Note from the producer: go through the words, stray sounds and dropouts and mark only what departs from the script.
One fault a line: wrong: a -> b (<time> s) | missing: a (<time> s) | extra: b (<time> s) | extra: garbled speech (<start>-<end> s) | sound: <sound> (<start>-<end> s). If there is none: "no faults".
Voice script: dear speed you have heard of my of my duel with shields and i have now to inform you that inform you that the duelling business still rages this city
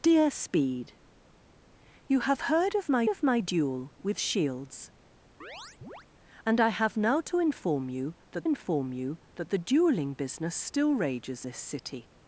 sound: chirp (5.4-6.1 s)